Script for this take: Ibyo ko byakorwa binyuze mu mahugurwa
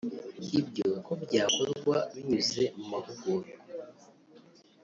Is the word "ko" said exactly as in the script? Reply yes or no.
yes